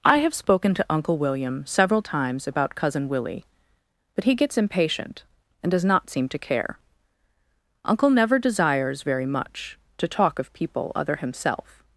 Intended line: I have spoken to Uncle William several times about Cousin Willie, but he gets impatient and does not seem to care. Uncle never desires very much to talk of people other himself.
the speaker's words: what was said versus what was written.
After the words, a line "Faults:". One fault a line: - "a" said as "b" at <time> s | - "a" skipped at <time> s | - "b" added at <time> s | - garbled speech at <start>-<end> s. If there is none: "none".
I have spoken to Uncle William several times about Cousin Willie, but he gets impatient and does not seem to care. Uncle never desires very much to talk of people other himself.
Faults:
none